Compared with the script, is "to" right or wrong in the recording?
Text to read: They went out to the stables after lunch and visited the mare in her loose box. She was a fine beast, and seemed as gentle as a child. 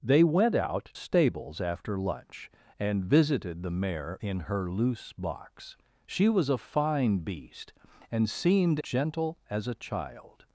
wrong